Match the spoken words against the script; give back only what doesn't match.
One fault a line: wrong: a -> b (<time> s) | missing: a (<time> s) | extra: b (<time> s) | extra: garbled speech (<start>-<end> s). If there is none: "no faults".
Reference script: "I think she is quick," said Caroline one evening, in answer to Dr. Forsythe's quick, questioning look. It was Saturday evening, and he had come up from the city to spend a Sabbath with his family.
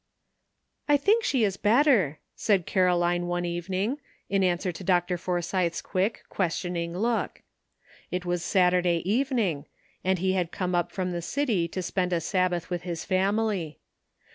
wrong: quick -> better (1.6 s)